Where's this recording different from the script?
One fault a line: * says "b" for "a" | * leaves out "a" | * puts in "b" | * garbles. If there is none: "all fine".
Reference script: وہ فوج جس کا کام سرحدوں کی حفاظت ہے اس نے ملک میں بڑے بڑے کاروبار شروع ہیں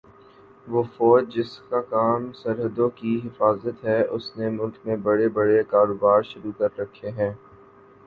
* puts in "کر رکھے"